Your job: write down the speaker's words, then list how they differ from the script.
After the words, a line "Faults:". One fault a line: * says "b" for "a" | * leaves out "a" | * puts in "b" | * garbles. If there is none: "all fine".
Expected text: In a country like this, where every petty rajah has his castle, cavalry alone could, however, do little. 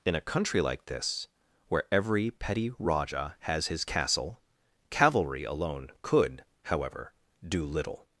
In a country like this, where every petty rajah has his castle, cavalry alone could, however, do little.
Faults:
all fine